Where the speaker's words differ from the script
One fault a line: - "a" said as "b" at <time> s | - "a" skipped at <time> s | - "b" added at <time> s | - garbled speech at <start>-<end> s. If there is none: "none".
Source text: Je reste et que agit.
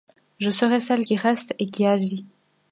- "serai celle qui" added at 0.5 s
- "que" said as "qui" at 1.7 s